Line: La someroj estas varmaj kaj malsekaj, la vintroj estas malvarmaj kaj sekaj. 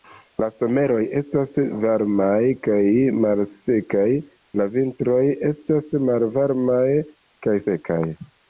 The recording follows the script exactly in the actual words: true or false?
true